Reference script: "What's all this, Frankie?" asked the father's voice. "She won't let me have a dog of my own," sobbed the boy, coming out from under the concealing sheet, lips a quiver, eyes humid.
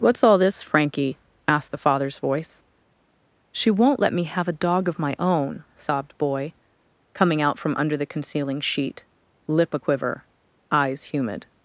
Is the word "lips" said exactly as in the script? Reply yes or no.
no